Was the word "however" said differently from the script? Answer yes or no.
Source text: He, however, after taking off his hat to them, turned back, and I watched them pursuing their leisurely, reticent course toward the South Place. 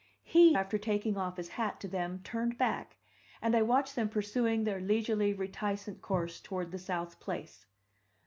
yes